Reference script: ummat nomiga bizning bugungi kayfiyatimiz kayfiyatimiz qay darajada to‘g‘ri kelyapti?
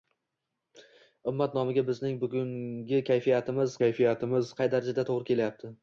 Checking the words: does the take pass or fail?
pass